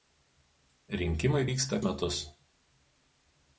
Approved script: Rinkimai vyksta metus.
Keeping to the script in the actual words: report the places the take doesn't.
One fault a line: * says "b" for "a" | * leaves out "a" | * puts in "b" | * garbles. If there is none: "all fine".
all fine